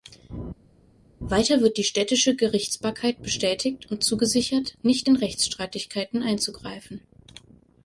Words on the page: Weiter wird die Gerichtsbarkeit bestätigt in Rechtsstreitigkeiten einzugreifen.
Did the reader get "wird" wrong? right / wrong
right